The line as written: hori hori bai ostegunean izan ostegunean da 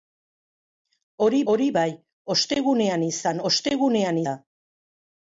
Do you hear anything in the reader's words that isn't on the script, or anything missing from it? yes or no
no